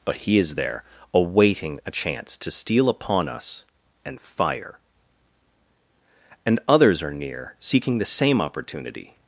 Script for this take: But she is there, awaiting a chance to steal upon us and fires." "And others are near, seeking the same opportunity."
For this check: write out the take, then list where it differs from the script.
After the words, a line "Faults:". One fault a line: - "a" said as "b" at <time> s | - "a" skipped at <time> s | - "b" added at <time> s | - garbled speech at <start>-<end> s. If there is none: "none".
But he is there, awaiting a chance to steal upon us and fire." "And others are near, seeking the same opportunity."
Faults:
- "she" said as "he" at 0.2 s
- "fires" said as "fire" at 4.2 s